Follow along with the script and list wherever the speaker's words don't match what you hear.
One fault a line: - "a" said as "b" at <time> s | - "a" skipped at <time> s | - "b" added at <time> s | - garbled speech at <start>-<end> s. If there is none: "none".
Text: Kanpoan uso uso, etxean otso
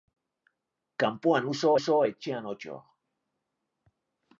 none